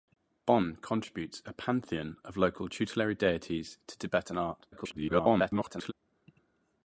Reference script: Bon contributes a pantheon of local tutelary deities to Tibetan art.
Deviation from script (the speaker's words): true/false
true